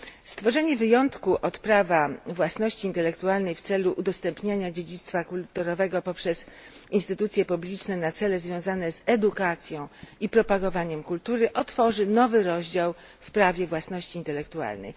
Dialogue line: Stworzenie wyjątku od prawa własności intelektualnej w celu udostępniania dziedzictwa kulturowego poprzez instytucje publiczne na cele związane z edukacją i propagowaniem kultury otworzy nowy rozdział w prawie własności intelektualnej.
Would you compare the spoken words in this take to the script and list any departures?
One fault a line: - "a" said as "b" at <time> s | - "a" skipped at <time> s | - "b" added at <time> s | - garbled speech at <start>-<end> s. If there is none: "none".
none